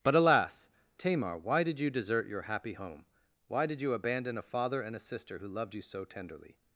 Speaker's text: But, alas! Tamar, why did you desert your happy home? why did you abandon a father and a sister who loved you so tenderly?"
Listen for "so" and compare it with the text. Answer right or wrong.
right